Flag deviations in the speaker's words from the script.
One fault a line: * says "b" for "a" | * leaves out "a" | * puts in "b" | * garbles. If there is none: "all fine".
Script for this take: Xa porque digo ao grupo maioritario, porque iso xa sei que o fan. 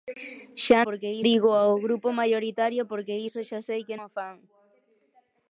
all fine